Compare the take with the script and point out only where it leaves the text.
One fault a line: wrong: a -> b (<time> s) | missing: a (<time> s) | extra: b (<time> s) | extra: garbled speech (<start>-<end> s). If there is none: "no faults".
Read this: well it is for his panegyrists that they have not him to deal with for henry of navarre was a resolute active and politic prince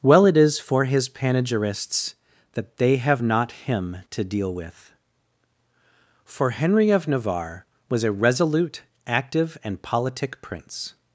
no faults